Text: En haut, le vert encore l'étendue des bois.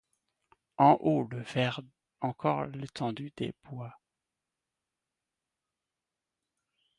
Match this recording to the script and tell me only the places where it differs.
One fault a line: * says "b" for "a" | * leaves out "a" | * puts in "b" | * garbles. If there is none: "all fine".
all fine